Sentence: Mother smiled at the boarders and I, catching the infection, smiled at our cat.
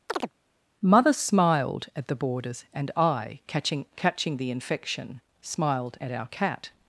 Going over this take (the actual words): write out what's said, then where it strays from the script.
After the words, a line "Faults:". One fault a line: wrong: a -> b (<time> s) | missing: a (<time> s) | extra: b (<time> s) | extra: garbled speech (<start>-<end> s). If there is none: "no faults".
Mother smiled at the boarders and I, catching catching the infection, smiled at our cat.
Faults:
extra: catching (4.0 s)